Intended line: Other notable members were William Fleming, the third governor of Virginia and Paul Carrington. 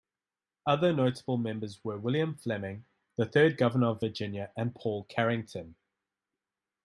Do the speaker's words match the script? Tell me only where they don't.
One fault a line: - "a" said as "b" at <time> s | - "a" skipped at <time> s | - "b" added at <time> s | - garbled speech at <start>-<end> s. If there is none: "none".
none